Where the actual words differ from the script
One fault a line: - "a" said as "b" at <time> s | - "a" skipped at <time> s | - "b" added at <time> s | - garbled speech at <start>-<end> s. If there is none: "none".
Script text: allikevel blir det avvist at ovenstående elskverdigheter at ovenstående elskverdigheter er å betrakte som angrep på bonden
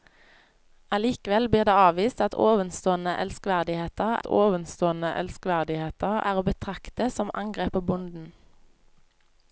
none